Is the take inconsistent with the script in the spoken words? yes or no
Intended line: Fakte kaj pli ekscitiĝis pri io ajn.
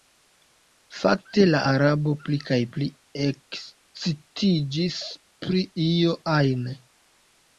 yes